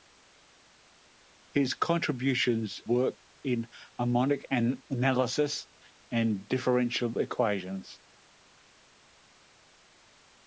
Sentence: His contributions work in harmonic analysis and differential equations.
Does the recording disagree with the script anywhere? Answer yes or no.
no